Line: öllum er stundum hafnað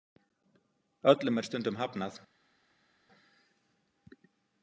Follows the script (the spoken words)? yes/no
yes